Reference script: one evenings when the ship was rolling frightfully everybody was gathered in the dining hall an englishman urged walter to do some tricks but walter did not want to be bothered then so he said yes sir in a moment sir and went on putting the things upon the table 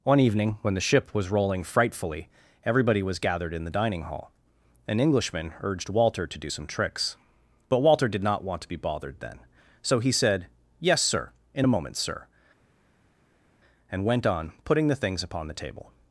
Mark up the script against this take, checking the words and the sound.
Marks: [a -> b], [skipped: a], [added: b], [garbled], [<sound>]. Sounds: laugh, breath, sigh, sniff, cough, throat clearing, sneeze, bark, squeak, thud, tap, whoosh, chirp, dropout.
one [evenings -> evening] when the ship was rolling frightfully everybody was gathered in the dining hall an englishman urged walter to do some tricks but walter did not want to be bothered then so he said yes sir in a moment sir and went on putting the things upon the table